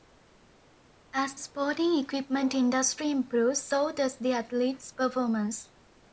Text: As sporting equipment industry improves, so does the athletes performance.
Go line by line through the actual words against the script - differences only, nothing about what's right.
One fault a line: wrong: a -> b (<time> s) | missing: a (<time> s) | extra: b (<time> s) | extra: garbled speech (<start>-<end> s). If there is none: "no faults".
no faults